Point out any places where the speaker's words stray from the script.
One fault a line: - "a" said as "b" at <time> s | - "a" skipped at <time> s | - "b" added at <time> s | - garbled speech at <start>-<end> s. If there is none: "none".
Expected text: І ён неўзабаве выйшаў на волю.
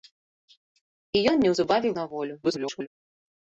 - "выйшаў" skipped at 1.9 s
- garbled speech at 2.4-2.9 s